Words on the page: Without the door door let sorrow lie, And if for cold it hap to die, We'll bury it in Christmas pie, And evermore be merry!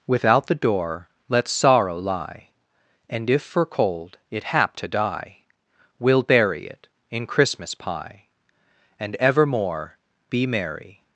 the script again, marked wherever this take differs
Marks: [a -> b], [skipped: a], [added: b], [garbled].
Without the door [skipped: door] let sorrow lie, And if for cold it hap to die, We'll bury it in Christmas pie, And evermore be merry!